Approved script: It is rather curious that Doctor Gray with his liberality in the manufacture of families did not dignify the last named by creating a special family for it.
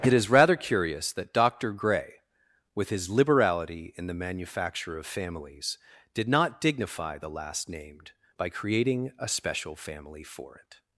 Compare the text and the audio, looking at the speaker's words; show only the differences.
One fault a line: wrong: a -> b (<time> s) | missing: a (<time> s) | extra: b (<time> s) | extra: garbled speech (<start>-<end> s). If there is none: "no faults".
no faults